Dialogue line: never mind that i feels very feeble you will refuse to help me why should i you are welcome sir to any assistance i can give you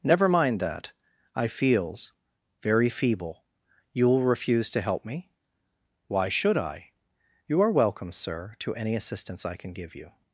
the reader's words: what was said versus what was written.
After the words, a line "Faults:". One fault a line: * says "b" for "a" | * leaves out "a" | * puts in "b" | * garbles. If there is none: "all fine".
never mind that i feels very feeble you will refuse to help me why should i you are welcome sir to any assistance i can give you
Faults:
all fine